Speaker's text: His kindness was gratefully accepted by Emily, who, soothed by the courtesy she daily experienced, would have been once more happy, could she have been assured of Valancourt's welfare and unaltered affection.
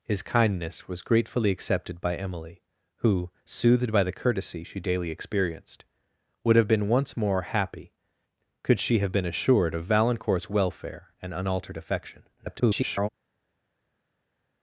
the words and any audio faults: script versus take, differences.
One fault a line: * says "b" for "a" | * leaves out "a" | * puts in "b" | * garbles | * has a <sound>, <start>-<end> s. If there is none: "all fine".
* garbles